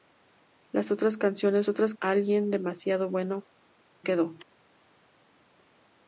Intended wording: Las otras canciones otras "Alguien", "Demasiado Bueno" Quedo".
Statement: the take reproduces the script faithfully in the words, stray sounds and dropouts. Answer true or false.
true